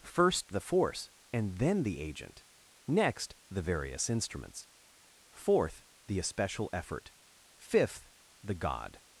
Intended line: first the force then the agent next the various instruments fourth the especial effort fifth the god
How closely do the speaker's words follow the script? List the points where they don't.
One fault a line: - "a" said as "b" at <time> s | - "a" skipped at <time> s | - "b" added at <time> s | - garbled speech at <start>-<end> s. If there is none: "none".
- "and" added at 1.3 s